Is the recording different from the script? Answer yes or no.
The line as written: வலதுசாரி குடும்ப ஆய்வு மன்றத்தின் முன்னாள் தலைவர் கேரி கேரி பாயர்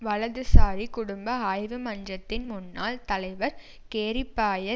yes